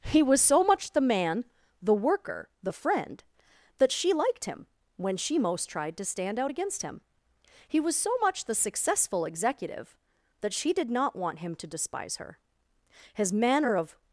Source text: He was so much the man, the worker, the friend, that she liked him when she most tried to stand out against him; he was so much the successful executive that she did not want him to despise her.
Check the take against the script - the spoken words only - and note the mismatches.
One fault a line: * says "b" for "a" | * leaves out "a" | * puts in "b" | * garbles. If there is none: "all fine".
* puts in "His manner of"